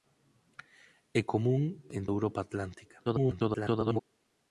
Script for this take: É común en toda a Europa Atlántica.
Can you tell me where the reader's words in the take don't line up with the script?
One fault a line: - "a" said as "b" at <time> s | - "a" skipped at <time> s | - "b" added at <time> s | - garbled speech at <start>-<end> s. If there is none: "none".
- "toda" skipped at 2.0 s
- garbled speech at 3.0-4.0 s